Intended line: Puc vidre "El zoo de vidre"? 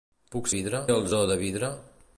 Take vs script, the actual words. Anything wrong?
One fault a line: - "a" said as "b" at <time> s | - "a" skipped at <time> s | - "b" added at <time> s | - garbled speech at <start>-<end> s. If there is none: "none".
none